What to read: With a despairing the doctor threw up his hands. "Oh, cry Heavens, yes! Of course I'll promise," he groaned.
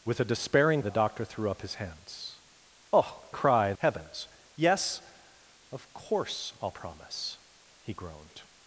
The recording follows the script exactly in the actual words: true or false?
true